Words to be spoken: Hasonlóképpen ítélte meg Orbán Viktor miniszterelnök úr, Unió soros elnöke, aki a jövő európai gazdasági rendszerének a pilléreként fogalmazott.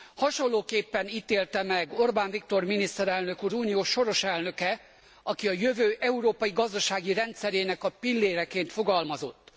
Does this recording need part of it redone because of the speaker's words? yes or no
no